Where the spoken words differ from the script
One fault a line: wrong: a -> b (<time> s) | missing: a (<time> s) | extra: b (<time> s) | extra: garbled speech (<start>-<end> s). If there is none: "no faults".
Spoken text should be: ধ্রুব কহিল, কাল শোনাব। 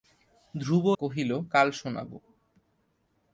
no faults